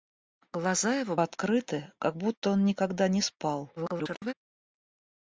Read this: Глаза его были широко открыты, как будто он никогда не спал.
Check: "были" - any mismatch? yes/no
yes